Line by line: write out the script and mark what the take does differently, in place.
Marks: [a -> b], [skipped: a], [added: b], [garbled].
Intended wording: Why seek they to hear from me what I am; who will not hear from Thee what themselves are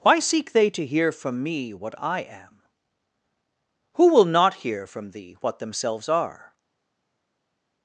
Why seek they to hear from me what I am; who will not hear from Thee what themselves are